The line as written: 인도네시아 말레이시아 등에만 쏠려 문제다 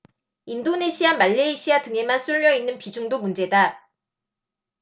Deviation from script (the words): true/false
true